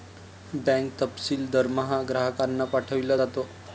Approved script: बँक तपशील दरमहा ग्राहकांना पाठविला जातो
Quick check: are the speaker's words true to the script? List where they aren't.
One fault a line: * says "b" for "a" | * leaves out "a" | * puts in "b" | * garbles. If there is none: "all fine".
all fine